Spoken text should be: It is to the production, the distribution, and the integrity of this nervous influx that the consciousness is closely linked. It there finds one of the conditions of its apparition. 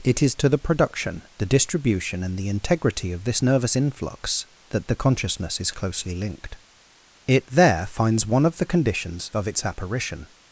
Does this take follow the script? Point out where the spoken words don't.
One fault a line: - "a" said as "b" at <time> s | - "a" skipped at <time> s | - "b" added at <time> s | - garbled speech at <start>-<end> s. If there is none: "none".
none